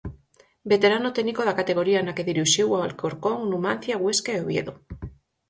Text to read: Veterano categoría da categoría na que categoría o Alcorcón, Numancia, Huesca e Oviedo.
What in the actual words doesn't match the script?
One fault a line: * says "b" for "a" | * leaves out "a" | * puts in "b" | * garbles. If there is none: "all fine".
* says "técnico" for "categoría"
* says "dirixiu" for "categoría"